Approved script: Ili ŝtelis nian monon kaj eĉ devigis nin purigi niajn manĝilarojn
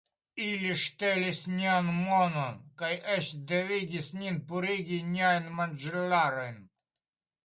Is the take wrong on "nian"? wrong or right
right